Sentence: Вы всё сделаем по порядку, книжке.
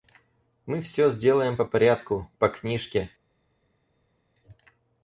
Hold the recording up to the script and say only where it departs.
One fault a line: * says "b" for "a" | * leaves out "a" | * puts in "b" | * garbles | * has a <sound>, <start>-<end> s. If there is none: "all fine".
* says "Мы" for "Вы"
* puts in "по"